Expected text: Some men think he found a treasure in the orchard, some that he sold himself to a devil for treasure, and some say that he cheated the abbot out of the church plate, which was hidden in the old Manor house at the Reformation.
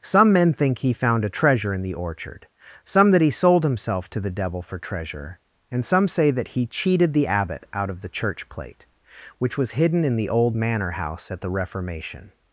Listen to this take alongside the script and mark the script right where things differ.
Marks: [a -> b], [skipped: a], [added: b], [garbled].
Some men think he found a treasure in the orchard, some that he sold himself to [a -> the] devil for treasure, and some say that he cheated the abbot out of the church plate, which was hidden in the old Manor house at the Reformation.